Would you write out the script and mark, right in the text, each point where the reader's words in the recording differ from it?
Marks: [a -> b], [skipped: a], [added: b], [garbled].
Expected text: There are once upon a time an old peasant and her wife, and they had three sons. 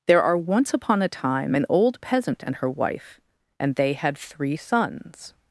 There are once upon a time an old peasant and her wife, and they had three sons.